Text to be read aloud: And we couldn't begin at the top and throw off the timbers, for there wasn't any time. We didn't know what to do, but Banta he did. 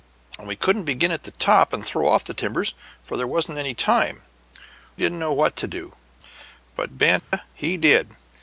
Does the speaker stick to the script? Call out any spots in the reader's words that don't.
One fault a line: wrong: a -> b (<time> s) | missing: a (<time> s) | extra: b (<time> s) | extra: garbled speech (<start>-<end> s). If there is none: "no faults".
missing: We (4.2 s)